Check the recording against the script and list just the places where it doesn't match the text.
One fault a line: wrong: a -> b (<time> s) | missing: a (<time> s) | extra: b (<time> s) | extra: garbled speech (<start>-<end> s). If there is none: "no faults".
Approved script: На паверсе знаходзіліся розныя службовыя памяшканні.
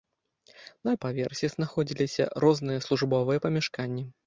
no faults